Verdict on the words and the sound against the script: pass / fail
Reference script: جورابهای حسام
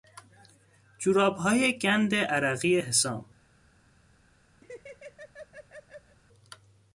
fail